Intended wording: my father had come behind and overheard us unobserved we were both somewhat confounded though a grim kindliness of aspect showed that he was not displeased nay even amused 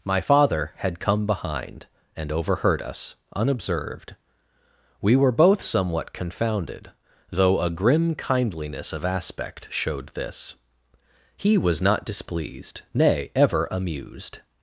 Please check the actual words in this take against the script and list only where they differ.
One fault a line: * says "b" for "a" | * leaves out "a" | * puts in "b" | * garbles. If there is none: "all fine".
* says "this" for "that"
* says "ever" for "even"